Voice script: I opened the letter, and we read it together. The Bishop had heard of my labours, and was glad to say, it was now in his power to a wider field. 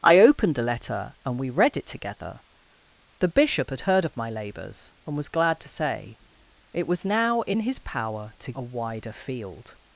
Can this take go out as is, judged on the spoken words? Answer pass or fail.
pass